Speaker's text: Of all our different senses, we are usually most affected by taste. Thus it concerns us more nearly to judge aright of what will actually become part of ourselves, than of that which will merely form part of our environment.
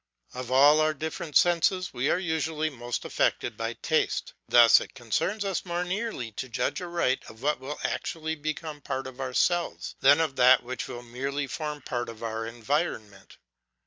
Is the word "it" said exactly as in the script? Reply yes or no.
yes